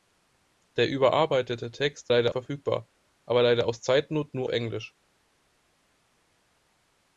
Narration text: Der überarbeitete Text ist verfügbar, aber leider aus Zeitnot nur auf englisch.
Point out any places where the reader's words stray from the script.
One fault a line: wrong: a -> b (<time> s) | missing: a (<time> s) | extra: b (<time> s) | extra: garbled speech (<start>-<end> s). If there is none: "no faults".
wrong: ist -> leider (2.1 s)
missing: auf (4.5 s)